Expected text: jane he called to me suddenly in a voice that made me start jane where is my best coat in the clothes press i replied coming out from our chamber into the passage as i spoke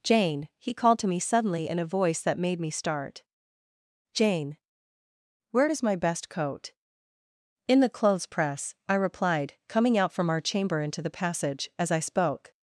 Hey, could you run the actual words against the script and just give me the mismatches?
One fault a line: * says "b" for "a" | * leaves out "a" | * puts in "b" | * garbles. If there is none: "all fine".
all fine